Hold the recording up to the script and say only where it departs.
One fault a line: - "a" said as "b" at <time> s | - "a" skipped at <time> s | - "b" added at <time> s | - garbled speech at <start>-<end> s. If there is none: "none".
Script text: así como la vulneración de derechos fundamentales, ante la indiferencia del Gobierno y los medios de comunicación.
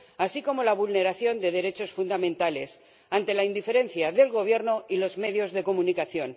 none